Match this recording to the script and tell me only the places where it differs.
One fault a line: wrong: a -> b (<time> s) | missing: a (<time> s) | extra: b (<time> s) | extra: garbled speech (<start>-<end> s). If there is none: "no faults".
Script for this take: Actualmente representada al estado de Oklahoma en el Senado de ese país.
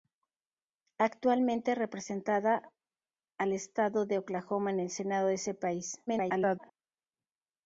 extra: garbled speech (6.1-6.7 s)